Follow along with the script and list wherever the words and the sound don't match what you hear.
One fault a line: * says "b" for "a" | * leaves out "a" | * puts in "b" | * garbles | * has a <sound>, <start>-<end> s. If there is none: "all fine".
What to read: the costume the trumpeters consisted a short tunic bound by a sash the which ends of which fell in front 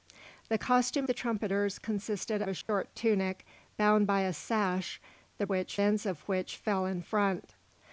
* has a dropout, 2.6-2.7 s